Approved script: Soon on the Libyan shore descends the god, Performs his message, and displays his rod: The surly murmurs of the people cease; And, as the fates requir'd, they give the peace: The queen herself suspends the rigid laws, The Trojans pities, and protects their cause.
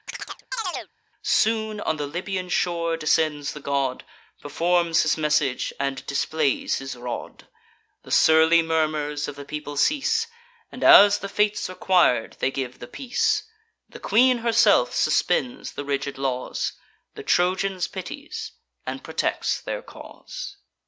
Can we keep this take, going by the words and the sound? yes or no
no